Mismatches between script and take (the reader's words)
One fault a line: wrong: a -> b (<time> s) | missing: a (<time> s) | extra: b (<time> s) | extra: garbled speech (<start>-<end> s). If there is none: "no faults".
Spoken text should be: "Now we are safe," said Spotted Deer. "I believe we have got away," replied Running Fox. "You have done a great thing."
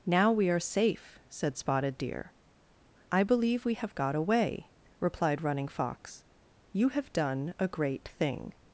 no faults